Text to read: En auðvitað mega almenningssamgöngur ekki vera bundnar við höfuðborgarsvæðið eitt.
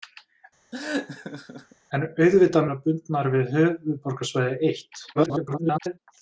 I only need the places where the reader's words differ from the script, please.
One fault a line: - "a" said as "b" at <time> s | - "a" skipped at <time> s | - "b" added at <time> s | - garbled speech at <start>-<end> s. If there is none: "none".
- "mega almenningssamgöngur ekki" skipped at 2.7 s
- garbled speech at 5.1-6.0 s